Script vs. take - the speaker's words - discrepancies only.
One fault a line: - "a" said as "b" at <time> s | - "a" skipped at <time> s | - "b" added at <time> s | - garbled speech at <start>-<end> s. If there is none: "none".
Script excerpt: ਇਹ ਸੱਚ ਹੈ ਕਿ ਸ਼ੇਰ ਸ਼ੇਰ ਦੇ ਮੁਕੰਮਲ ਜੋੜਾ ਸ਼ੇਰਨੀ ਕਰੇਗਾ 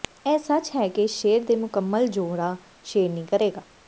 - "ਸ਼ੇਰ" skipped at 1.4 s